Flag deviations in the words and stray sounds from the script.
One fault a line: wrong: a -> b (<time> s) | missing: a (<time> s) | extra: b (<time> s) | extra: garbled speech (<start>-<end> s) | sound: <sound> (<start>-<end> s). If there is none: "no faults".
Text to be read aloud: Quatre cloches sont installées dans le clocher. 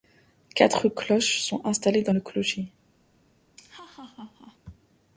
sound: laugh (3.6-4.6 s)